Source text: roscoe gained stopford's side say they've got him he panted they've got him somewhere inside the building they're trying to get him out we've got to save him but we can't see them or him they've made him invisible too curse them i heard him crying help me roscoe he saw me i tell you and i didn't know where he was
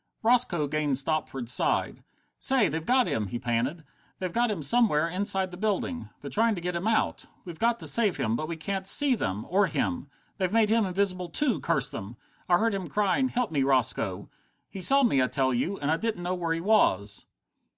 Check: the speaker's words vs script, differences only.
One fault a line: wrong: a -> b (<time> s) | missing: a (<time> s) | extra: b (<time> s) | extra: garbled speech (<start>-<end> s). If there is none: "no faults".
no faults